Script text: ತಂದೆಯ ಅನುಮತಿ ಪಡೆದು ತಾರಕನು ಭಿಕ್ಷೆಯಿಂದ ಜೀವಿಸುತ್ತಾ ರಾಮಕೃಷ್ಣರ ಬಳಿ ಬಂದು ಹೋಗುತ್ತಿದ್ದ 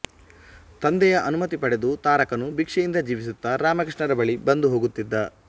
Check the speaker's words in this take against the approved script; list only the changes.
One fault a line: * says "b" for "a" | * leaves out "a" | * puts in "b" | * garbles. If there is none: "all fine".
all fine